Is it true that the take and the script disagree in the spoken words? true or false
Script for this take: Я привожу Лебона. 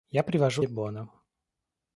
false